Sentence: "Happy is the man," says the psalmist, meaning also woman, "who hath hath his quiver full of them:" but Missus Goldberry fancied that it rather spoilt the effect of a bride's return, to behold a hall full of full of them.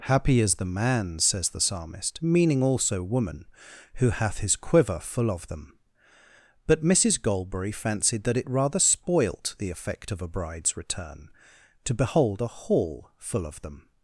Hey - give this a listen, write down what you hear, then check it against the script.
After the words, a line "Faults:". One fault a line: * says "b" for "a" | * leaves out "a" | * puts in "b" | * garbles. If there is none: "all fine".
"Happy is the man," says the psalmist, meaning also woman, "who hath his quiver full of them:" but Missus Goldberry fancied that it rather spoilt the effect of a bride's return, to behold a hall full of them.
Faults:
* leaves out "hath"
* leaves out "full of"